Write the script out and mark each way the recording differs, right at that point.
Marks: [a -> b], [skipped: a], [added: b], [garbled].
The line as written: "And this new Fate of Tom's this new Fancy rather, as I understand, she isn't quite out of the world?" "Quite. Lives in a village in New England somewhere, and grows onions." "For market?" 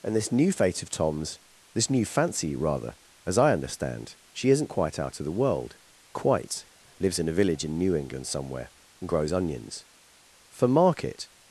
"And this new Fate of Tom's this new Fancy rather, as I understand, she isn't quite out of the world?" "Quite. Lives in a village in New England somewhere, and grows onions." "For market?"